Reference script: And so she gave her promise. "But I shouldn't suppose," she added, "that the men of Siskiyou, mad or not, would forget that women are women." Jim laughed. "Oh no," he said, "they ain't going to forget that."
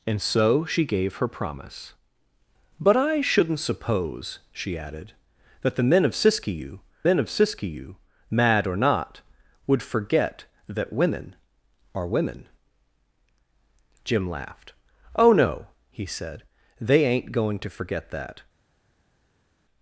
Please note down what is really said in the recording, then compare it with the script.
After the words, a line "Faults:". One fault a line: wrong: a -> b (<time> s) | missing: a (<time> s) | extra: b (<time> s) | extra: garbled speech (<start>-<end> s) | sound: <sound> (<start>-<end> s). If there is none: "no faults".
And so she gave her promise. "But I shouldn't suppose," she added, "that the men of Siskiyou men of Siskiyou, mad or not, would forget that women are women." Jim laughed. "Oh no," he said, "they ain't going to forget that."
Faults:
extra: men of Siskiyou (7.0 s)